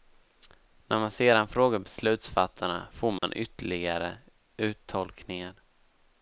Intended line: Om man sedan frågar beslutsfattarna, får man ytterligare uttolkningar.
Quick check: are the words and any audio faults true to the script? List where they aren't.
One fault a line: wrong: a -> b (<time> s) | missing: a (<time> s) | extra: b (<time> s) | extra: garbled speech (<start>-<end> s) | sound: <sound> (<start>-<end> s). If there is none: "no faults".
wrong: Om -> När (0.9 s)
sound: dropout (3.2-3.2 s)